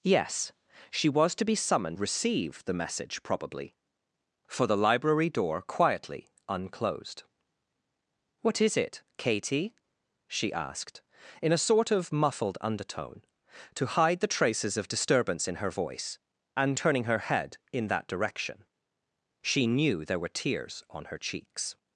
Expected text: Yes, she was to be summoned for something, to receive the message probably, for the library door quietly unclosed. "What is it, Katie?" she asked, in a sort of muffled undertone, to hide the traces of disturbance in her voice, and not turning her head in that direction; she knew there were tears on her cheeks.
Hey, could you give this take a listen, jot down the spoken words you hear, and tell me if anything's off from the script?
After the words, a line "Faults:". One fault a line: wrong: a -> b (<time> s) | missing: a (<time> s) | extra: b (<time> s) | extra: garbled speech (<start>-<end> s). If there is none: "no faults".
Yes, she was to be summoned receive the message probably, for the library door quietly unclosed. "What is it, Katie?" she asked, in a sort of muffled undertone, to hide the traces of disturbance in her voice, and turning her head in that direction; she knew there were tears on her cheeks.
Faults:
missing: for something to (2.0 s)
missing: not (16.8 s)